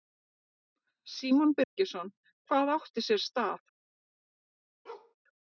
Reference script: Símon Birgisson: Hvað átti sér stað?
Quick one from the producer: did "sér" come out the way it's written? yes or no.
yes